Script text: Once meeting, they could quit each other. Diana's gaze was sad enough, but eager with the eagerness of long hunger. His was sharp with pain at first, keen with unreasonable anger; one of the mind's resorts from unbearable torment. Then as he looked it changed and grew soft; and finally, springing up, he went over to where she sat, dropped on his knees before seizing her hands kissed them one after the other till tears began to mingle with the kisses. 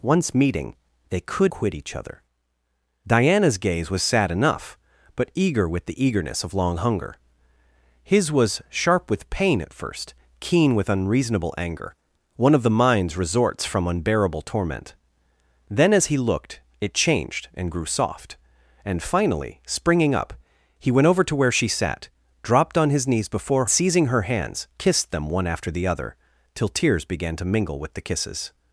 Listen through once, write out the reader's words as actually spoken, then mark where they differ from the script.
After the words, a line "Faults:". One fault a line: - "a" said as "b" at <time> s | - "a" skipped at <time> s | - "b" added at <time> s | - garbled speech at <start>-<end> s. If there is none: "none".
Once meeting, they could quit each other. Diana's gaze was sad enough, but eager with the eagerness of long hunger. His was sharp with pain at first, keen with unreasonable anger; one of the mind's resorts from unbearable torment. Then as he looked it changed and grew soft; and finally, springing up, he went over to where she sat, dropped on his knees before seizing her hands kissed them one after the other till tears began to mingle with the kisses.
Faults:
none